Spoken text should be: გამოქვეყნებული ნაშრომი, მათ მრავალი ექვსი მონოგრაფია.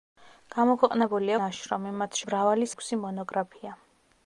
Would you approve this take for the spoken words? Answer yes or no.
yes